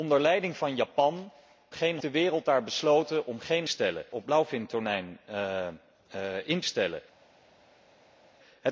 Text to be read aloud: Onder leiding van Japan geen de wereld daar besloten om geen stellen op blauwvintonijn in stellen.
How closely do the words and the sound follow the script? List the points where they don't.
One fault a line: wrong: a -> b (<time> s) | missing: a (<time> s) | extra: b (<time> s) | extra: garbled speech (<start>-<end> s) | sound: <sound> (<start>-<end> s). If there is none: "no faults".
no faults